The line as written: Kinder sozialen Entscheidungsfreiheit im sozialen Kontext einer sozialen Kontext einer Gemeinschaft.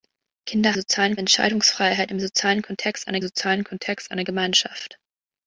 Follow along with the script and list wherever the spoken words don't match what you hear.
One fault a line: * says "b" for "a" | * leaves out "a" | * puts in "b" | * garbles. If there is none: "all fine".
all fine